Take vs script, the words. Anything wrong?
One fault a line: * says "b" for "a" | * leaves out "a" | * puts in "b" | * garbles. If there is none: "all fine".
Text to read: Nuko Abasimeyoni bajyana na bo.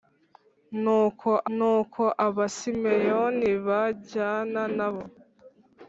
* puts in "nuko"